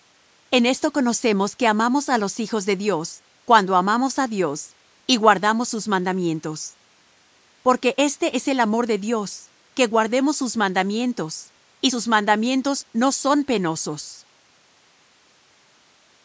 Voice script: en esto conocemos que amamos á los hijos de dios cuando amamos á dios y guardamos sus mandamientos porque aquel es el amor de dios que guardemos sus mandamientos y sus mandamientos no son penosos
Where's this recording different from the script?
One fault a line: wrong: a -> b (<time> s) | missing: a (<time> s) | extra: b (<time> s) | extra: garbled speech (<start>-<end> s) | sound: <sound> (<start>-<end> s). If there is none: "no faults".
wrong: aquel -> este (8.0 s)